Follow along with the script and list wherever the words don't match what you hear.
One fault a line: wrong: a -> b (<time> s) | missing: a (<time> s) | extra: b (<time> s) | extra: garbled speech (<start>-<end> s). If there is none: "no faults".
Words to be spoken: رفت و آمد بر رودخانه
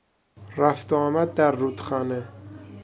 wrong: بر -> در (1.3 s)